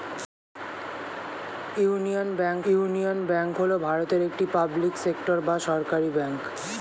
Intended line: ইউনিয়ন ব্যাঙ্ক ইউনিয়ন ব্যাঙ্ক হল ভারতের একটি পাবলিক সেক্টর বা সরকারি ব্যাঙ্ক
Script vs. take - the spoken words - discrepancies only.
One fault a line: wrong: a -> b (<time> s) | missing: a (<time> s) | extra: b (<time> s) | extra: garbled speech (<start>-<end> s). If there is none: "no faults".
no faults